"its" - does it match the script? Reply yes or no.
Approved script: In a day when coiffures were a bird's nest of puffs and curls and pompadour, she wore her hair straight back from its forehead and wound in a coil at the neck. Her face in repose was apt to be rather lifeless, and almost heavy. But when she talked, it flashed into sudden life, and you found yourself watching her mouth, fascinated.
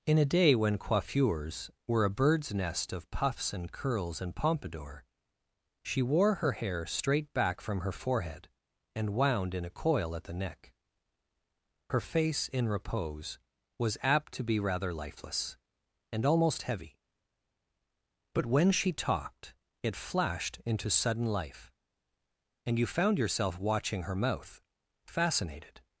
no